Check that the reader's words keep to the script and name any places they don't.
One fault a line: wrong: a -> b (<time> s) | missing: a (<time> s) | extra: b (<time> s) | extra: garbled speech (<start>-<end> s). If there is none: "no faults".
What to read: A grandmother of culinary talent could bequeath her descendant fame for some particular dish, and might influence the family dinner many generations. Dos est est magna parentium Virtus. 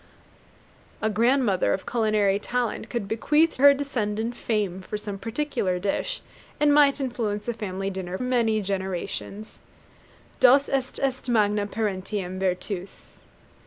no faults